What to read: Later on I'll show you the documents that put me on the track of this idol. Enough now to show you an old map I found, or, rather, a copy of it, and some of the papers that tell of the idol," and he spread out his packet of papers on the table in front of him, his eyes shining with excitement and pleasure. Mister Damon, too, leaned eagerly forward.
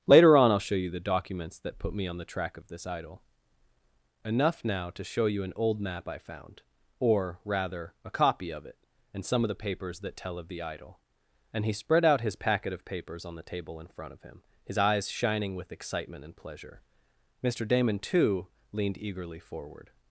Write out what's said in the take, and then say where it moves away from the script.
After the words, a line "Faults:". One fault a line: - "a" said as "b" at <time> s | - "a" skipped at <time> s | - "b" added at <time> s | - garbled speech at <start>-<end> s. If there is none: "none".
Later on I'll show you the documents that put me on the track of this idol. Enough now to show you an old map I found, or, rather, a copy of it, and some of the papers that tell of the idol," and he spread out his packet of papers on the table in front of him, his eyes shining with excitement and pleasure. Mister Damon, too, leaned eagerly forward.
Faults:
none